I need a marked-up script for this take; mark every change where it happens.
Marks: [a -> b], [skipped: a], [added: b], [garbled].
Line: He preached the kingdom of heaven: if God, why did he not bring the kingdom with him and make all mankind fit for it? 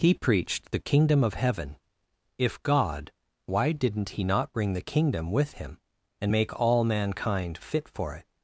He preached the kingdom of heaven: if God, why [did -> didn't] he not bring the kingdom with him and make all mankind fit for it?